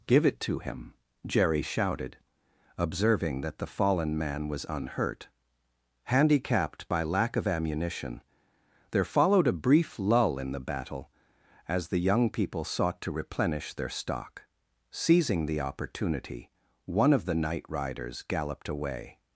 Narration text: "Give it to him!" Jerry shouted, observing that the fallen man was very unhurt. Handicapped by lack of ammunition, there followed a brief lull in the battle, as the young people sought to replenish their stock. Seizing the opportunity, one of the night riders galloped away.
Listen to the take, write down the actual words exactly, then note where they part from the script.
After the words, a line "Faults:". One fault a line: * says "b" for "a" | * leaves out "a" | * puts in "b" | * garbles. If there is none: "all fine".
"Give it to him!" Jerry shouted, observing that the fallen man was unhurt. Handicapped by lack of ammunition, there followed a brief lull in the battle, as the young people sought to replenish their stock. Seizing the opportunity, one of the night riders galloped away.
Faults:
* leaves out "very"